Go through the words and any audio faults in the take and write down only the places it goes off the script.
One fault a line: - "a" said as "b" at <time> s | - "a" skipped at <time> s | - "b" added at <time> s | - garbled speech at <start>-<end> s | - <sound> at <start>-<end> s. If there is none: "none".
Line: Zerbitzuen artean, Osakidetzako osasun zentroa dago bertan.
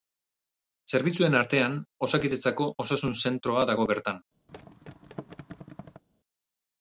- thud at 4.5-6.0 s